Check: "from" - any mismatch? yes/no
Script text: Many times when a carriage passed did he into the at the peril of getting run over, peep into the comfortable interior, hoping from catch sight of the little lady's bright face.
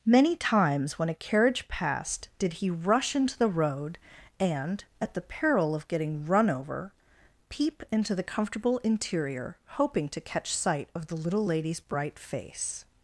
yes